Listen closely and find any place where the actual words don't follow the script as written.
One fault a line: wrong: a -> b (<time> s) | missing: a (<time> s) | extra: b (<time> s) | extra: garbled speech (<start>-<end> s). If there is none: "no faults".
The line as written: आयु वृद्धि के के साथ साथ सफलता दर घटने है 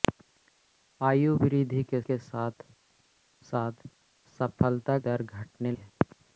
no faults